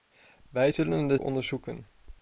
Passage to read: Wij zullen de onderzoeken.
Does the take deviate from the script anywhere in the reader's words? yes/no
no